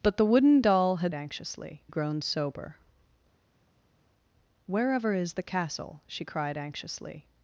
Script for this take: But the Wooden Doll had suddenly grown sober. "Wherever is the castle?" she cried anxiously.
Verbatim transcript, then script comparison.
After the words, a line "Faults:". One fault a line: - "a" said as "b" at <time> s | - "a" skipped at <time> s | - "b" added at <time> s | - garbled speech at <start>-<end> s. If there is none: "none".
But the Wooden Doll had anxiously grown sober. "Wherever is the castle?" she cried anxiously.
Faults:
- "suddenly" said as "anxiously" at 1.1 s